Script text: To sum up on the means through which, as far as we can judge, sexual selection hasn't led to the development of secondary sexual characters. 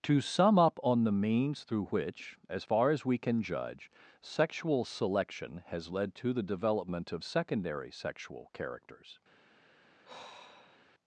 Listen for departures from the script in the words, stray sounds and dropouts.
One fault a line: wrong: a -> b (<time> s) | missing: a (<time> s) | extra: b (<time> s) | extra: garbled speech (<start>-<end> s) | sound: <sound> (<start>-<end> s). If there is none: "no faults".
wrong: hasn't -> has (5.7 s)
sound: sigh (10.0-10.9 s)